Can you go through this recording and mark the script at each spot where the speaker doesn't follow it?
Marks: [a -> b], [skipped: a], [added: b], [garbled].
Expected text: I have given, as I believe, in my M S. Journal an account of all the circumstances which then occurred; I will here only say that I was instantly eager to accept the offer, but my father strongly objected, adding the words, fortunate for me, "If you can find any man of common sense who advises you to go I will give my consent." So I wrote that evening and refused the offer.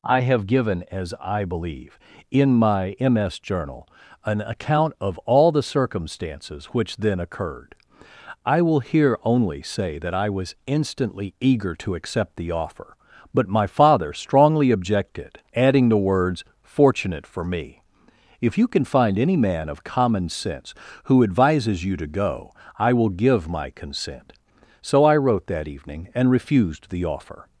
I have given, as I believe, in my M S. Journal an account of all the circumstances which then occurred; I will here only say that I was instantly eager to accept the offer, but my father strongly objected, adding the words, fortunate for me, "If you can find any man of common sense who advises you to go I will give my consent." So I wrote that evening and refused the offer.